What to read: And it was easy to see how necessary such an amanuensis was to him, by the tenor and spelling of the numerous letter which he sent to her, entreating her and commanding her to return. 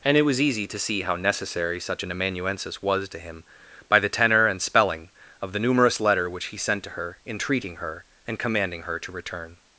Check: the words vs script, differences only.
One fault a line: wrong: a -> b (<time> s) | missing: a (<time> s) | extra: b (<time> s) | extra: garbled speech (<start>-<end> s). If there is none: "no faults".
no faults